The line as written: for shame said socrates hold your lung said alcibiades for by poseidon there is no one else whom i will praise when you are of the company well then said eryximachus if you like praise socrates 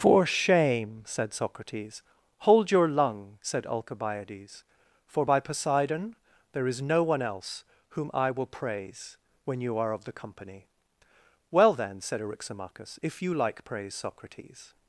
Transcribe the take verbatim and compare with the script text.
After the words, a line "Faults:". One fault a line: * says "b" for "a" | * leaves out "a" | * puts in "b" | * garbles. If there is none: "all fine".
for shame said socrates hold your lung said alcibiades for by poseidon there is no one else whom i will praise when you are of the company well then said eryximachus if you like praise socrates
Faults:
all fine